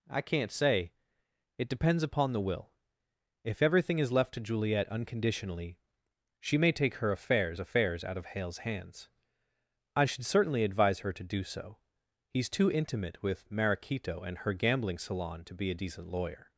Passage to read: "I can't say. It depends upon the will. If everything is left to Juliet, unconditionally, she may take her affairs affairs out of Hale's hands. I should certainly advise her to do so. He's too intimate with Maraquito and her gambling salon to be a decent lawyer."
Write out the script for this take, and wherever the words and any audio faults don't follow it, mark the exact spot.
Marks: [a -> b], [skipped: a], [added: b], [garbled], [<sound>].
"I can't say. It depends upon the will. If everything is left to Juliet, unconditionally, she may take her affairs affairs out of Hale's hands. I should certainly advise her to do so. He's too intimate with Maraquito and her gambling salon to be a decent lawyer."